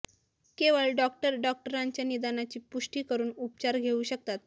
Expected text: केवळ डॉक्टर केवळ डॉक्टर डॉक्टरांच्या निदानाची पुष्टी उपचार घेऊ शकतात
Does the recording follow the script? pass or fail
fail